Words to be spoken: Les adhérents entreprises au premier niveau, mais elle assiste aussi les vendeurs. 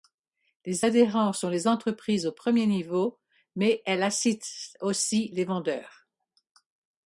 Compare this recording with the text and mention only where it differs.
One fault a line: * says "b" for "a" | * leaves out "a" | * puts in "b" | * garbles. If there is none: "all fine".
* puts in "sont les"